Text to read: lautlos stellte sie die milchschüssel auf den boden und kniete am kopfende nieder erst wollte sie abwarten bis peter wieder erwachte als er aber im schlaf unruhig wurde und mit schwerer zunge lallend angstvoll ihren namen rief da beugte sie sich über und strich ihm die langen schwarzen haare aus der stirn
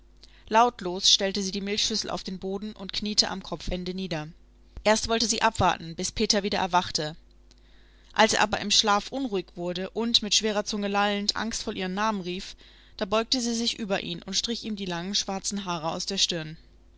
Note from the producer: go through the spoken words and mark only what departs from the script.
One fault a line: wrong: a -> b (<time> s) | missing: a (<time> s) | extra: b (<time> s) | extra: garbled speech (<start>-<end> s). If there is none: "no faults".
extra: ihn (14.0 s)